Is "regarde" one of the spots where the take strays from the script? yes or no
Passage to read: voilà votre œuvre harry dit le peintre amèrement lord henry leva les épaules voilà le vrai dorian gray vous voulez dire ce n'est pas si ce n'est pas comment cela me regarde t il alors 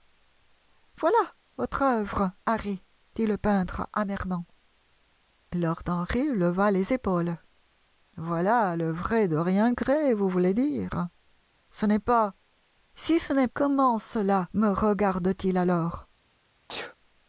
no